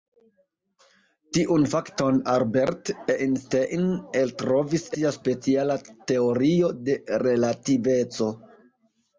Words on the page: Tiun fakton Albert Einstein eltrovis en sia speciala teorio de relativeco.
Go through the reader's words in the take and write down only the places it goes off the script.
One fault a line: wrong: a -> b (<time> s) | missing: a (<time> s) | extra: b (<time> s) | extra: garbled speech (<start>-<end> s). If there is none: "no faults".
missing: en (4.9 s)